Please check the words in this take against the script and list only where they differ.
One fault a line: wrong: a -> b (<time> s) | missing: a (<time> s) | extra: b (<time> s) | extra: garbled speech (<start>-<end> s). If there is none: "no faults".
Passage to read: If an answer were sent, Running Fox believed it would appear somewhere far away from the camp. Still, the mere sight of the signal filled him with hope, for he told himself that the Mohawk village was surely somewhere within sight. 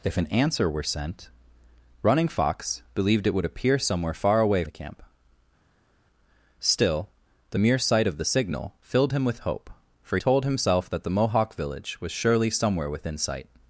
missing: from (4.6 s)
missing: he (10.2 s)